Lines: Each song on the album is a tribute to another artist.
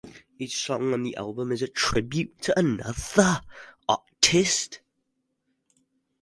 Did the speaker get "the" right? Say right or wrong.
right